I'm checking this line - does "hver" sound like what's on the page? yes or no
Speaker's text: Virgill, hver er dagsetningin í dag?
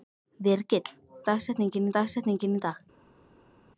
no